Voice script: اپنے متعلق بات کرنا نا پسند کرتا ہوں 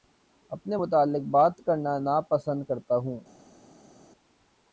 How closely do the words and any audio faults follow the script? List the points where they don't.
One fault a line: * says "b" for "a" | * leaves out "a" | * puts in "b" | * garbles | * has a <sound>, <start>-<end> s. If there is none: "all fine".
all fine